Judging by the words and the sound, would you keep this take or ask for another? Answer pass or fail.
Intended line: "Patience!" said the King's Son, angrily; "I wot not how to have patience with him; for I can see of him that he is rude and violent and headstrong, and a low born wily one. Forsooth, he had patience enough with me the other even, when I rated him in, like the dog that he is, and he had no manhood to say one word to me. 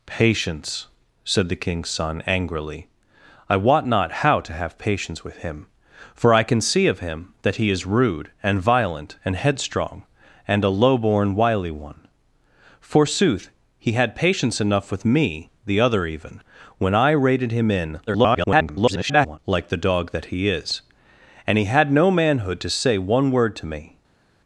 fail